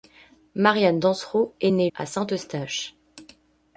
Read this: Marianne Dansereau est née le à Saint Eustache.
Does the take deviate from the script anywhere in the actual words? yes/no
yes